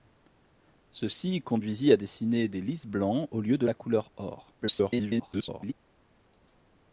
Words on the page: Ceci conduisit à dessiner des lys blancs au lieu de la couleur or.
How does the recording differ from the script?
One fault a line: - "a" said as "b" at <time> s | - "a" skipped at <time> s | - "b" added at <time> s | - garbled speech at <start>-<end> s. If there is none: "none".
- garbled speech at 4.6-5.7 s